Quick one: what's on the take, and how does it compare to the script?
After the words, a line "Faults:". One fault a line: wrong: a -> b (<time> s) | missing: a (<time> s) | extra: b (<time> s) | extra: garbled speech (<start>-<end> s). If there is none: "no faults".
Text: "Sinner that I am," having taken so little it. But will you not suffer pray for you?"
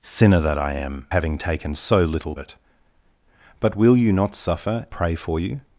"Sinner that I am," having taken so little it. But will you not suffer pray for you?"
Faults:
no faults